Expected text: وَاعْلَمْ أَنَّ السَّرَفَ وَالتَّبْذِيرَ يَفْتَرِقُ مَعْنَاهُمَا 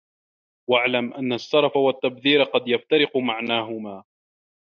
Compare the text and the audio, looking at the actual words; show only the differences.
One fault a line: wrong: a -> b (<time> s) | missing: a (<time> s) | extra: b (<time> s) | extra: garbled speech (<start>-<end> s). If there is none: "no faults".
extra: قَدْ (2.4 s)